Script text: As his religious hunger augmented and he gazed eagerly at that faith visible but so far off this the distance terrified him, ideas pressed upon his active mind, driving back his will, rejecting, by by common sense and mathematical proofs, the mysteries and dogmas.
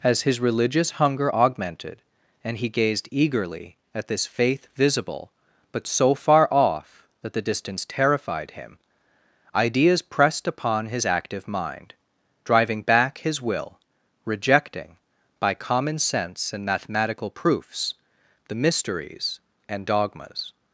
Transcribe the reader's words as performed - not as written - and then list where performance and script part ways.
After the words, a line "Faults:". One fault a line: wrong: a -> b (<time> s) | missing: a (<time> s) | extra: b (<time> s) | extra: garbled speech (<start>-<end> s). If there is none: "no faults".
As his religious hunger augmented and he gazed eagerly at this faith visible but so far off that the distance terrified him, ideas pressed upon his active mind, driving back his will, rejecting, by common sense and mathematical proofs, the mysteries and dogmas.
Faults:
wrong: that -> this (4.1 s)
wrong: this -> that (7.2 s)
missing: by (15.5 s)